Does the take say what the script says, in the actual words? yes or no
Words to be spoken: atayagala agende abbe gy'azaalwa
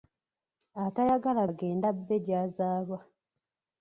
yes